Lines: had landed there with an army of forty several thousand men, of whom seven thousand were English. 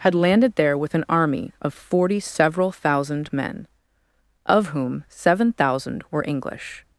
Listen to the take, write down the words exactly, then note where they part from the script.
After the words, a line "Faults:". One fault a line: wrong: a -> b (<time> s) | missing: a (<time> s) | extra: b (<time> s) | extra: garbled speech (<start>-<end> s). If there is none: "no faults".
had landed there with an army of forty several thousand men, of whom seven thousand were English.
Faults:
no faults